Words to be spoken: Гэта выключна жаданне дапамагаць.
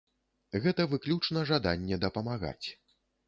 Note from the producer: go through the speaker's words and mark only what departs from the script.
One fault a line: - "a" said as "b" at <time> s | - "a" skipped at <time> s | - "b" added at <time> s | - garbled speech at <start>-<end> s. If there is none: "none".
none